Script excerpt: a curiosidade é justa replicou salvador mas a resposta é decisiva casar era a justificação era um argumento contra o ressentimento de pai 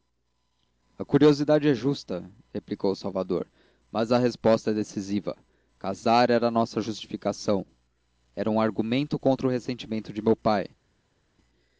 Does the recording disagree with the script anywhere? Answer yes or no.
yes